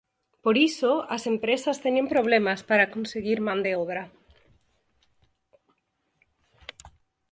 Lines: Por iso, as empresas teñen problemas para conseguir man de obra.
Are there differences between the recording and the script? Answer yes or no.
no